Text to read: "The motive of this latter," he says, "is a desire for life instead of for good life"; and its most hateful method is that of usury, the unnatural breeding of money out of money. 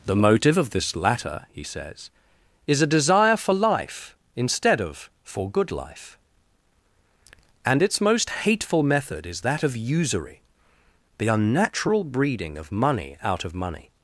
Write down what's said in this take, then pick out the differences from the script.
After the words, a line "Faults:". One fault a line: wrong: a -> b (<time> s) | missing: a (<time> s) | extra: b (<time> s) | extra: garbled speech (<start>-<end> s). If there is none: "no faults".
"The motive of this latter," he says, "is a desire for life instead of for good life"; and its most hateful method is that of usury, the unnatural breeding of money out of money.
Faults:
no faults